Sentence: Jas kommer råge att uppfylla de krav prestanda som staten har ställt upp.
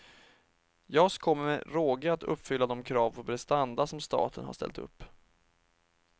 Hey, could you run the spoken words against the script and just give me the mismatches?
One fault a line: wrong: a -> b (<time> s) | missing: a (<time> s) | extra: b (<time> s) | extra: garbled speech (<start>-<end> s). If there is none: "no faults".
extra: med (1.4 s)
extra: på (3.1 s)